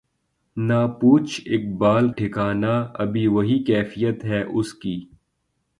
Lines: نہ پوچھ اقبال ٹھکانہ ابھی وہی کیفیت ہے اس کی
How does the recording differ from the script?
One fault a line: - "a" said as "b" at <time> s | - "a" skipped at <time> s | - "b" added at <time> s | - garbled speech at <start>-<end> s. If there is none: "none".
none